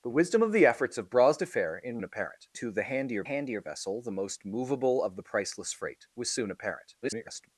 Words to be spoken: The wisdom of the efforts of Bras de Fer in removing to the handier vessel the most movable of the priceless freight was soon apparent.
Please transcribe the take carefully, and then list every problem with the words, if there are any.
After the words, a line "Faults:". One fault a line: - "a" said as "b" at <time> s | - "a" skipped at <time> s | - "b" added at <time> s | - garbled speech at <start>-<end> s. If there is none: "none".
The wisdom of the efforts of Bras de Fer in apparent to the handier handier vessel the most movable of the priceless freight was soon apparent. [garbled]
Faults:
- "removing" said as "apparent" at 2.0 s
- "handier" added at 3.2 s
- garbled speech at 7.0-7.5 s